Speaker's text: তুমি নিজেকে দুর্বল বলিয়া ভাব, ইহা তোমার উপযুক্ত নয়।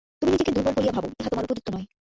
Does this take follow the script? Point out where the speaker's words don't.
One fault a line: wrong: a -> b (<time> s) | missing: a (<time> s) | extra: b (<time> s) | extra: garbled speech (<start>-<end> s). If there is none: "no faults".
no faults